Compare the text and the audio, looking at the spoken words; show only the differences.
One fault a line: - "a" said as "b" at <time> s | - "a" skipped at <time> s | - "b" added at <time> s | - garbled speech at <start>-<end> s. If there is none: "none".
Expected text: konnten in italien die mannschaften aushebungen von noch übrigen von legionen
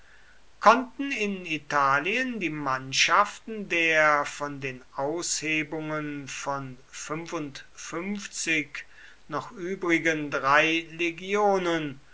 - "der von den" added at 3.7 s
- "von" said as "drei" at 10.3 s